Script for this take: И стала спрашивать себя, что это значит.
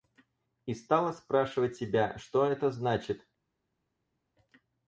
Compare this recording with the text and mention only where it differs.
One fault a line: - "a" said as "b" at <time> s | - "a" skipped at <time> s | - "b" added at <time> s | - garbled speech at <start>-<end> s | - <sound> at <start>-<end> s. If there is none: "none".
none